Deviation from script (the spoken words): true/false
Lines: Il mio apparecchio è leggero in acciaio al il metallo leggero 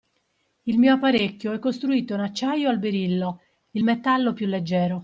true